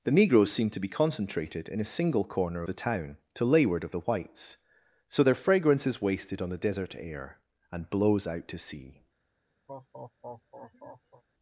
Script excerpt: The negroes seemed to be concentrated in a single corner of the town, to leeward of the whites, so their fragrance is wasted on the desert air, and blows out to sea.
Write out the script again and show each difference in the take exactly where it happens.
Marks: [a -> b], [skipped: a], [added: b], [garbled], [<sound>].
The negroes seemed to be concentrated in a single corner [skipped: of] the town, to leeward of the whites, so their fragrance is wasted on the desert air, and blows out to sea. [laugh]